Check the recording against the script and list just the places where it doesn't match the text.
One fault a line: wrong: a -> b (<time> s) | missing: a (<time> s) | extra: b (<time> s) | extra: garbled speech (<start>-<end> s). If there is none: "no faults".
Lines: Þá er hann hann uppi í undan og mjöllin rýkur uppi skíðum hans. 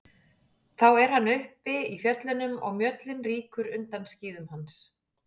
missing: hann (1.3 s)
wrong: undan -> fjöllunum (2.0 s)
wrong: uppi -> undan (3.8 s)